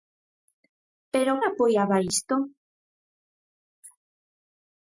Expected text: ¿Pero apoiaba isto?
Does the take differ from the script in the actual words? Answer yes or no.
no